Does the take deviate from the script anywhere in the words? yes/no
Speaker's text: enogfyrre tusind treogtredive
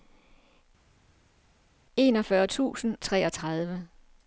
no